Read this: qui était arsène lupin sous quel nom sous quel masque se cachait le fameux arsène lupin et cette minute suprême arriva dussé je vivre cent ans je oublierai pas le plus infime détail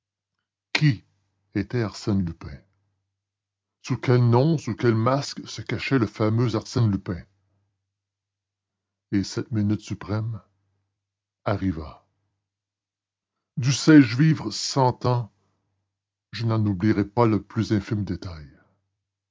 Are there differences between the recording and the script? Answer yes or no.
yes